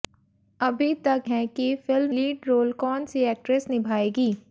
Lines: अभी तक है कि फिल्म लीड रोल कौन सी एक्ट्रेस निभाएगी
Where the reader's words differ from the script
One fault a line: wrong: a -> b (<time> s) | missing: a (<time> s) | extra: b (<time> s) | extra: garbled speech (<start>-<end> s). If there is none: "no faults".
no faults